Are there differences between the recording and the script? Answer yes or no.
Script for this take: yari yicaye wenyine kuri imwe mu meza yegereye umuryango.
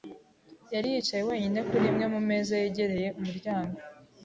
no